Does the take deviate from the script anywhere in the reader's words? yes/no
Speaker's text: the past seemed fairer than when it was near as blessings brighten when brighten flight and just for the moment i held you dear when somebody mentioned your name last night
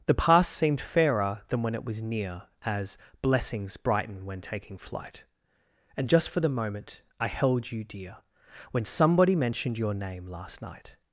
yes